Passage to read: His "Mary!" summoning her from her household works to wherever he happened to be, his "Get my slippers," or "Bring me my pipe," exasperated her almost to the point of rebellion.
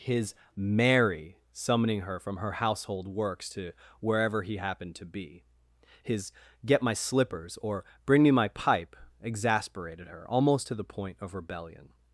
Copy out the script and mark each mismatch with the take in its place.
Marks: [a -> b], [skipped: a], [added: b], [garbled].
His "Mary!" summoning her from her household works to wherever he happened to be, his "Get my slippers," or "Bring me my pipe," exasperated her almost to the point of rebellion.